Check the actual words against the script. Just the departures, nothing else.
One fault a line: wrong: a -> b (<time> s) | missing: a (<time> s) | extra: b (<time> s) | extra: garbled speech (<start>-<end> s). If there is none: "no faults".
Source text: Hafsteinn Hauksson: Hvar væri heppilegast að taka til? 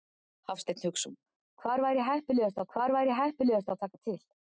extra: Hvar væri heppilegast (2.8 s)